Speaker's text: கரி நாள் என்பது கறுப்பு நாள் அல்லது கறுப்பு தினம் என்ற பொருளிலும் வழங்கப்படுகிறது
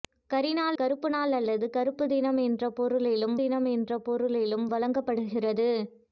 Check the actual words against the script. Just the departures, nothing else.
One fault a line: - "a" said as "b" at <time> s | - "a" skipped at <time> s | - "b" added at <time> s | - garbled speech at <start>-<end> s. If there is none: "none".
- "என்பது" skipped at 0.8 s
- "தினம் என்ற பொருளிலும்" added at 3.3 s